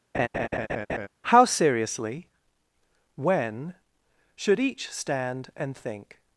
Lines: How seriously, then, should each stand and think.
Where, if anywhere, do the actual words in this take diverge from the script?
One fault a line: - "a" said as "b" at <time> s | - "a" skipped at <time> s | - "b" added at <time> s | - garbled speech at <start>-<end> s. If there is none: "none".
- "then" said as "when" at 3.1 s